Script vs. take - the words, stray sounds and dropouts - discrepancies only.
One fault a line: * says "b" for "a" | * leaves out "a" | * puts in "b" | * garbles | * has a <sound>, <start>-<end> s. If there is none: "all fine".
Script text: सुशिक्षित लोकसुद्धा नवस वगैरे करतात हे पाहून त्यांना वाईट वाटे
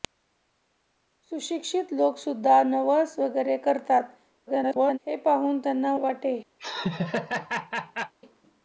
* garbles
* leaves out "वाईट"
* has a laugh, 6.6-8.1 s